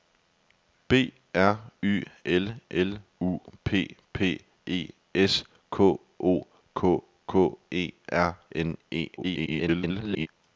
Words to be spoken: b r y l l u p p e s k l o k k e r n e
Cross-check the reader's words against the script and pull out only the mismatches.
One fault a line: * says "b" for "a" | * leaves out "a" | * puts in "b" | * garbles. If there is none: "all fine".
* leaves out "l"
* garbles